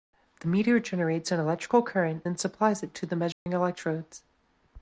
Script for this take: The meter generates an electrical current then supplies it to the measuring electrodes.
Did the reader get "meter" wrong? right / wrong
right